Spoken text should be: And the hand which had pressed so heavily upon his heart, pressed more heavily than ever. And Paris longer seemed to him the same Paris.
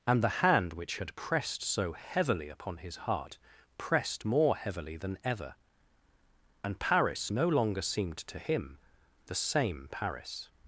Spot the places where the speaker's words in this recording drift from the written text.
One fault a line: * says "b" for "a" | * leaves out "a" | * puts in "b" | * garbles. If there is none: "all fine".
* puts in "no"